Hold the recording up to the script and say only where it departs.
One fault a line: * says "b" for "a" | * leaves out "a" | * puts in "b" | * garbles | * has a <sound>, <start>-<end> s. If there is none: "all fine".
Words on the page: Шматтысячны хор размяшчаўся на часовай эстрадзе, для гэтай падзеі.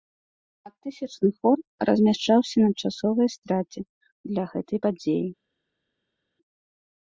all fine